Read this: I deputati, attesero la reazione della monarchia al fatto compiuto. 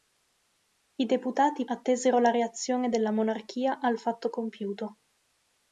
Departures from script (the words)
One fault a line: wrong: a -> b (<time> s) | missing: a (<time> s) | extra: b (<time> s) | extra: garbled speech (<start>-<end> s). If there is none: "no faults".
no faults